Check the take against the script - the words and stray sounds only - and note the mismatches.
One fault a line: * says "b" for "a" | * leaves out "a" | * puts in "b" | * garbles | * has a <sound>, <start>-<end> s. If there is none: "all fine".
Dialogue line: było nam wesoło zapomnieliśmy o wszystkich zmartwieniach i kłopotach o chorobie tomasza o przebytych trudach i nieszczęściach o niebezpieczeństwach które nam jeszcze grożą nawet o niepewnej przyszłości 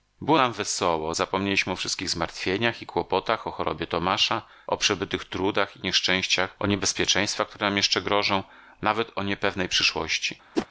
* has a whoosh, 10.6-10.7 s